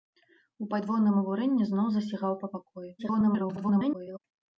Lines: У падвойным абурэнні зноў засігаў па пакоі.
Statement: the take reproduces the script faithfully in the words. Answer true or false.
false